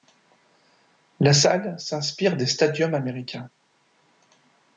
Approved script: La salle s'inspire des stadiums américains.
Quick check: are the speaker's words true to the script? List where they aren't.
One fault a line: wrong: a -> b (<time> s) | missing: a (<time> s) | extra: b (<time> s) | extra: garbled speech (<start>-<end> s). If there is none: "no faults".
no faults